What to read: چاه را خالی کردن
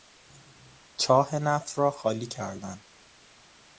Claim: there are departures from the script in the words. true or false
true